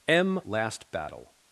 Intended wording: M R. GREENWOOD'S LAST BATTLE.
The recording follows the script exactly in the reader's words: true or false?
false